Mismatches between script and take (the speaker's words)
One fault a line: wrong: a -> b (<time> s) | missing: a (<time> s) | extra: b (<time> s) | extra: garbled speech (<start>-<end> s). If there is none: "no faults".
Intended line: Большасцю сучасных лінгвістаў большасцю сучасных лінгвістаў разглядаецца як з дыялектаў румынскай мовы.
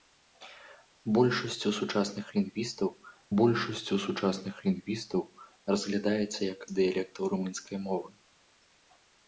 no faults